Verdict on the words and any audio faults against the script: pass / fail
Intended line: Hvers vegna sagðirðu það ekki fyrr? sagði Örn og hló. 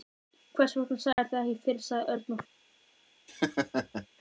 fail